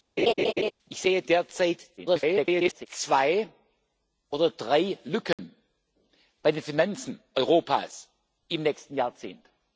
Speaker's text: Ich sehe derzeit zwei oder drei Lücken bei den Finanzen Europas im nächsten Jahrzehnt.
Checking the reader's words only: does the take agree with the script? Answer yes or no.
no